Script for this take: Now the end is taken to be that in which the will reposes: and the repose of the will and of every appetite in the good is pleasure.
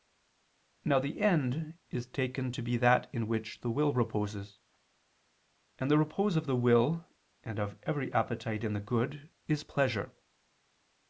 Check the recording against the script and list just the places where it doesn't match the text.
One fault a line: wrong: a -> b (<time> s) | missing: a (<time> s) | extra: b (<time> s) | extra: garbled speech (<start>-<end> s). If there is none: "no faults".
no faults